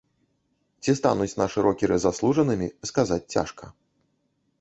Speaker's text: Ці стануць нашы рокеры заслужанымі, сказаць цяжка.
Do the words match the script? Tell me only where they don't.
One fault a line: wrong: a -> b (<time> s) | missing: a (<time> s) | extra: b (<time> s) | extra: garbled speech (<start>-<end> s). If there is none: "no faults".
no faults